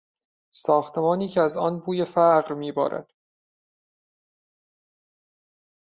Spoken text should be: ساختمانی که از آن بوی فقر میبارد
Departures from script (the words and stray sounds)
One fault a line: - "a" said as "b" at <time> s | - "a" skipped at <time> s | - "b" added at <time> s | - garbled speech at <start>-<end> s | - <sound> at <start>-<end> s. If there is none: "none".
none